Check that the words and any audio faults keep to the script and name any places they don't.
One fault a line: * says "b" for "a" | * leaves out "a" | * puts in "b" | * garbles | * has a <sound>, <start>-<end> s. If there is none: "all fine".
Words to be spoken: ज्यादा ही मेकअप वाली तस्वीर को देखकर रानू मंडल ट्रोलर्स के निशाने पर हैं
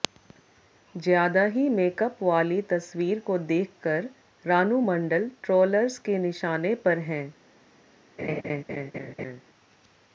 * has a laugh, 8.2-9.4 s